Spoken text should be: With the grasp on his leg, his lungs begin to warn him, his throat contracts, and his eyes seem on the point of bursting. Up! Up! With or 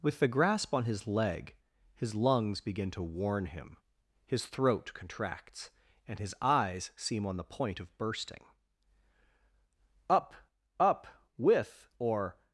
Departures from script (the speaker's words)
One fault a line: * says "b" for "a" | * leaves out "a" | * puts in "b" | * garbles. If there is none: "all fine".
all fine